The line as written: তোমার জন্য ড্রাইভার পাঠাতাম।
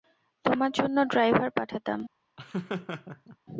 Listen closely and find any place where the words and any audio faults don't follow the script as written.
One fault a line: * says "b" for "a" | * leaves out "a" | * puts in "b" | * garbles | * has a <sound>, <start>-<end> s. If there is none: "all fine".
* has a laugh, 2.4-3.4 s